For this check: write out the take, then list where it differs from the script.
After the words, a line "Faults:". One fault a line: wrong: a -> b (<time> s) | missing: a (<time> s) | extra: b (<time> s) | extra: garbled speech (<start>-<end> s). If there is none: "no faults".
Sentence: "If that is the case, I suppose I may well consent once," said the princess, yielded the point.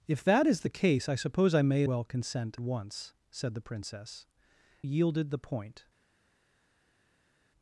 "If that is the case, I suppose I may well consent once," said the princess, yielded the point.
Faults:
no faults